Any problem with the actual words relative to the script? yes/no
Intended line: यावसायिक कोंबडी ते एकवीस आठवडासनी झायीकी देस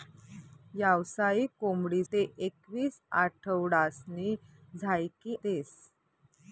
no